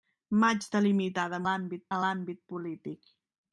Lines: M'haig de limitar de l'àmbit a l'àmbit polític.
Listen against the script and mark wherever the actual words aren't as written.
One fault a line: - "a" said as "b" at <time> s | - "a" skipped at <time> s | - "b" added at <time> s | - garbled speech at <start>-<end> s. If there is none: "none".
none